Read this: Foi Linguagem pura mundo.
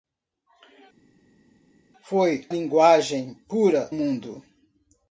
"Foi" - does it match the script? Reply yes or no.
yes